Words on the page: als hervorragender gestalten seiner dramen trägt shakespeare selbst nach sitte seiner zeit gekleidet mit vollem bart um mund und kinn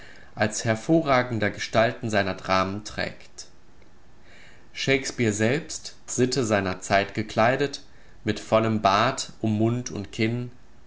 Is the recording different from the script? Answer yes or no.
yes